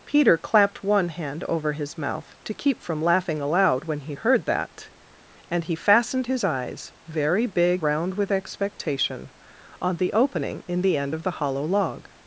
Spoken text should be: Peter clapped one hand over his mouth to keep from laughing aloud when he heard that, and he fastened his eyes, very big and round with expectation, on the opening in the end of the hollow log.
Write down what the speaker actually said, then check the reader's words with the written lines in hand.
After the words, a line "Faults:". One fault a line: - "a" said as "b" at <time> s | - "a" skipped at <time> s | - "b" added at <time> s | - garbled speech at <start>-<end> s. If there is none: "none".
Peter clapped one hand over his mouth to keep from laughing aloud when he heard that, and he fastened his eyes, very big round with expectation, on the opening in the end of the hollow log.
Faults:
- "and" skipped at 7.8 s